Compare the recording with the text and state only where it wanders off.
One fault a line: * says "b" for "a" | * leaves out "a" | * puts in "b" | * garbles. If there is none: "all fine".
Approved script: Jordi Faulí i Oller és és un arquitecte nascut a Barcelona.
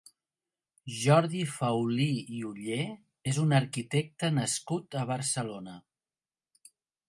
* leaves out "és"